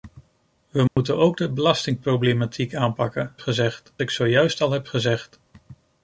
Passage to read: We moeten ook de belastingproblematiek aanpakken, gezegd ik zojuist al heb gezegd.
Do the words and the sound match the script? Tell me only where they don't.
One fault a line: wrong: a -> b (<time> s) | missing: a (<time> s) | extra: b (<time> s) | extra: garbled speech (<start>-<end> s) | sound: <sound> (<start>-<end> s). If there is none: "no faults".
sound: dropout (0.9-1.0 s)